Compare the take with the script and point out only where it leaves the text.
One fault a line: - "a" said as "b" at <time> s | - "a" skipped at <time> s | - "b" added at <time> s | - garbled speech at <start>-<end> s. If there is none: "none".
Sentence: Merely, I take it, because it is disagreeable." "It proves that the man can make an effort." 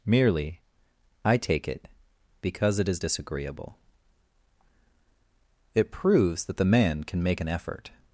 none